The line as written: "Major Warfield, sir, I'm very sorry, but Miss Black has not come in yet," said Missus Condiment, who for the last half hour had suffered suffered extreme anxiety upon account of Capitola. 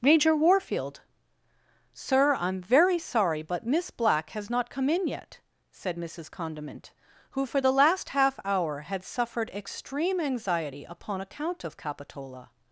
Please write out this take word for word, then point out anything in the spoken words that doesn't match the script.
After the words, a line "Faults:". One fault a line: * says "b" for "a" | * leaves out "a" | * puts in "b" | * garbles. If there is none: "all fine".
"Major Warfield, sir, I'm very sorry, but Miss Black has not come in yet," said Missus Condiment, who for the last half hour had suffered extreme anxiety upon account of Capitola.
Faults:
* leaves out "suffered"